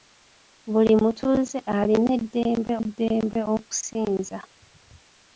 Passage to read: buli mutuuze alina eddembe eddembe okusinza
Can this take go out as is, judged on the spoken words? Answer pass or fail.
pass